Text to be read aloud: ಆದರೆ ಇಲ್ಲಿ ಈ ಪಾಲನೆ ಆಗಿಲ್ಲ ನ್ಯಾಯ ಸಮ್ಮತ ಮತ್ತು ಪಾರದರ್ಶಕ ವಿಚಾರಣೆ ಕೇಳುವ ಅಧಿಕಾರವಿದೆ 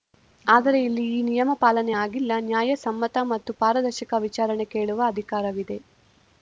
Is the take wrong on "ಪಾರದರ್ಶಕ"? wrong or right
right